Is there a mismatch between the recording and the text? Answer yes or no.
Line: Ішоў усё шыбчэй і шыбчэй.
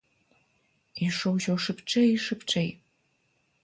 no